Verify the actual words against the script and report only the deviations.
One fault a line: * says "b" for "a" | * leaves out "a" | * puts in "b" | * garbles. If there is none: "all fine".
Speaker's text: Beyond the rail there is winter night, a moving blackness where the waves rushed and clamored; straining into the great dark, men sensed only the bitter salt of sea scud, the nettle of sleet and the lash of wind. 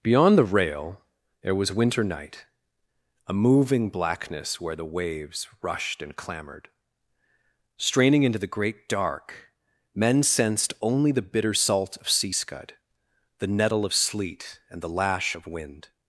* says "was" for "is"